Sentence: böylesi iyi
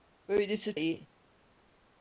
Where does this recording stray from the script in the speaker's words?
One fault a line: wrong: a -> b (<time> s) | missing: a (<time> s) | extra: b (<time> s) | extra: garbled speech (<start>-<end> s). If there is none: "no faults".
no faults